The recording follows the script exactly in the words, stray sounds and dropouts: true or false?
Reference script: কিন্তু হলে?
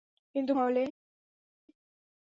true